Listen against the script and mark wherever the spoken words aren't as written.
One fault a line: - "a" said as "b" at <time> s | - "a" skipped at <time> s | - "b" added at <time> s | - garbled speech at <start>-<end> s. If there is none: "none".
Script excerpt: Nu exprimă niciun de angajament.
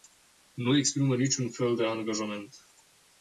- "fel" added at 1.5 s